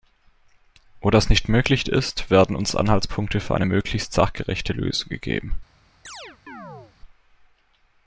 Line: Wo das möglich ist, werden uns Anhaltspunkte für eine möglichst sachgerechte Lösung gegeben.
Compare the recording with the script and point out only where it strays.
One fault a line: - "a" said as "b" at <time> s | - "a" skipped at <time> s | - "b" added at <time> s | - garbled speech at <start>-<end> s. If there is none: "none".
- "nicht" added at 1.3 s